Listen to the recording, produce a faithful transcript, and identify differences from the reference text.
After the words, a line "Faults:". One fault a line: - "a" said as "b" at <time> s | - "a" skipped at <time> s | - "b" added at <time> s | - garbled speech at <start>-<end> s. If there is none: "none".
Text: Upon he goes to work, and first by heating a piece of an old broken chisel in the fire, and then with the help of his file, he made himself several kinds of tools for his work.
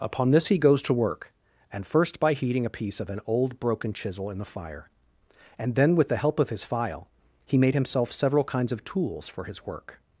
Upon this he goes to work, and first by heating a piece of an old broken chisel in the fire, and then with the help of his file, he made himself several kinds of tools for his work.
Faults:
- "this" added at 0.3 s